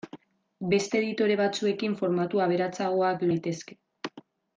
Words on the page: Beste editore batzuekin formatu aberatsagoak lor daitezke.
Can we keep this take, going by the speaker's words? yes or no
no